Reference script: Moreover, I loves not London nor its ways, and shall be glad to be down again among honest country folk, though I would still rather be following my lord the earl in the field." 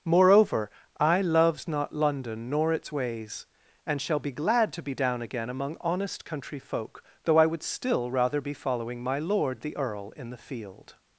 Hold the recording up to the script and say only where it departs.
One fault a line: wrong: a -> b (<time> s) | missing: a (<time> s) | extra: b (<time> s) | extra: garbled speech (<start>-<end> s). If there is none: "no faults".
no faults